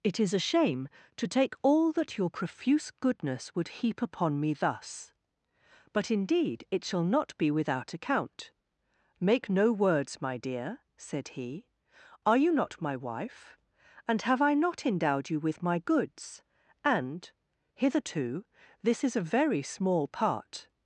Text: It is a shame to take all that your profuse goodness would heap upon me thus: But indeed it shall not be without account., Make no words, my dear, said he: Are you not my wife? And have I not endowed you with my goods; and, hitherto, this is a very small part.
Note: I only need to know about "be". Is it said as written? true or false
true